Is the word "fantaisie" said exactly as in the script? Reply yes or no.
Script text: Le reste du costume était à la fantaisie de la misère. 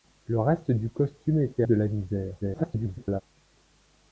no